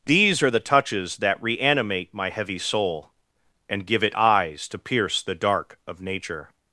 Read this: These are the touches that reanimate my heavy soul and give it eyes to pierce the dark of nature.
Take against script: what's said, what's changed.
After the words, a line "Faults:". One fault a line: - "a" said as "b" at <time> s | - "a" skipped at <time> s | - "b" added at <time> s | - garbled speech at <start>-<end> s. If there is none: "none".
These are the touches that reanimate my heavy soul and give it eyes to pierce the dark of nature.
Faults:
none